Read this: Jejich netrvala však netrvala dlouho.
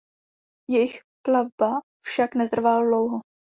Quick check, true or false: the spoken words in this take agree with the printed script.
false